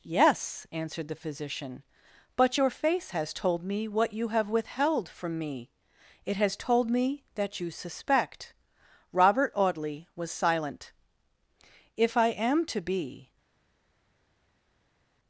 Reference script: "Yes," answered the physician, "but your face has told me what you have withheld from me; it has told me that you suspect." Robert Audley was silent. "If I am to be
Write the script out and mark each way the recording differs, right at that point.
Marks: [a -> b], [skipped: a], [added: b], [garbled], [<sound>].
"Yes," answered the physician, "but your face has told me what you have withheld from me; it has told me that you suspect." Robert Audley was silent. "If I am to be